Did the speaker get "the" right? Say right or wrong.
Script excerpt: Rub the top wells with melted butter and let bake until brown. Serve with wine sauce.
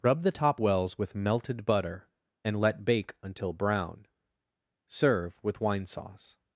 right